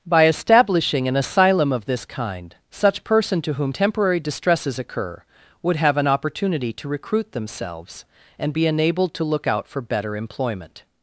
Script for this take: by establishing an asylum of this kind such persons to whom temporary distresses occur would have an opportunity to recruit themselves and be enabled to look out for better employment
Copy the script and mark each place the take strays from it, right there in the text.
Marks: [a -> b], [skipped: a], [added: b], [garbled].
by establishing an asylum of this kind such [persons -> person] to whom temporary distresses occur would have an opportunity to recruit themselves and be enabled to look out for better employment